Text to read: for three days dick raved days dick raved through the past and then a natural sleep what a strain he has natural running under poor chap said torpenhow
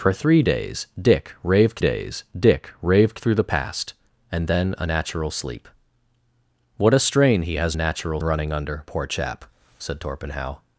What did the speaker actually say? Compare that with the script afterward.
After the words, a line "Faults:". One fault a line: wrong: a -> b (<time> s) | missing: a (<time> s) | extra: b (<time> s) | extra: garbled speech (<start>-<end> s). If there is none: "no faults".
for three days dick raved days dick raved through the past and then a natural sleep what a strain he has natural running under poor chap said torpenhow
Faults:
no faults